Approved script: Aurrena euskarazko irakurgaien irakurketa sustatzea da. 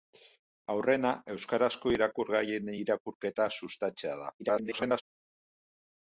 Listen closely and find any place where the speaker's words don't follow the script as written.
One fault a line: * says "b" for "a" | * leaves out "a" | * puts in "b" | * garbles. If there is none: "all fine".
* garbles